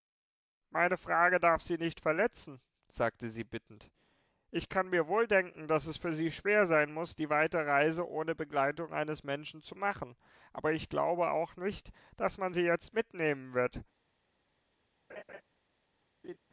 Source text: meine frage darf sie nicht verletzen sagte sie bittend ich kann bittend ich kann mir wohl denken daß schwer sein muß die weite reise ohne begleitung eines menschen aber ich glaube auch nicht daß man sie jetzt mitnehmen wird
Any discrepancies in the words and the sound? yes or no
yes